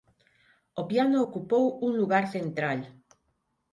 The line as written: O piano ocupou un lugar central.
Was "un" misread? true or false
false